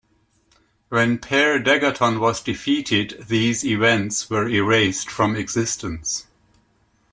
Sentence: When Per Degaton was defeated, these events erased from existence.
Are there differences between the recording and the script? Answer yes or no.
yes